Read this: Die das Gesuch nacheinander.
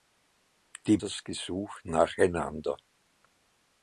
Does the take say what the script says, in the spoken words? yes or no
yes